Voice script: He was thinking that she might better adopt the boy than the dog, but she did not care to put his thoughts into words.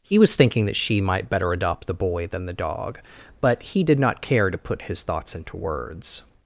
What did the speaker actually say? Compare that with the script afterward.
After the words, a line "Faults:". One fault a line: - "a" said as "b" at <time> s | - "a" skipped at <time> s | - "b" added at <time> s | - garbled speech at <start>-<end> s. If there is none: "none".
He was thinking that she might better adopt the boy than the dog, but he did not care to put his thoughts into words.
Faults:
- "she" said as "he" at 3.6 s